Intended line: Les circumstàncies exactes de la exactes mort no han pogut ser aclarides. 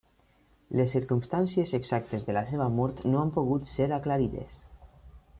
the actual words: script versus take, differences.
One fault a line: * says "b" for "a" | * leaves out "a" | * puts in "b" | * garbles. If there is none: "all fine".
* says "seva" for "exactes"